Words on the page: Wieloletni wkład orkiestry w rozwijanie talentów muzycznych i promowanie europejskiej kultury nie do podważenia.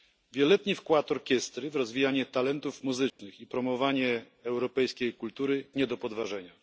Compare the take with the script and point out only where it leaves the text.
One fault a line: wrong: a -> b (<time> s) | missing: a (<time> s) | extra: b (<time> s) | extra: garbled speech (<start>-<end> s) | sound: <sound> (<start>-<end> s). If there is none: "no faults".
sound: dropout (3.1-3.2 s)